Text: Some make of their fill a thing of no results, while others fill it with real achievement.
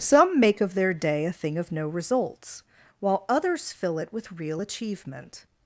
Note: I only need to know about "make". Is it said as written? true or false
true